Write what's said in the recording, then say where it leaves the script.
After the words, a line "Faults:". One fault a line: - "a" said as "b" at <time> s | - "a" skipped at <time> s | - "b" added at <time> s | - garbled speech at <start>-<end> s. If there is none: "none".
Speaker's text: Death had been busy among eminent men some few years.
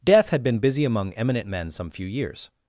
Death had been busy among eminent men some few years.
Faults:
none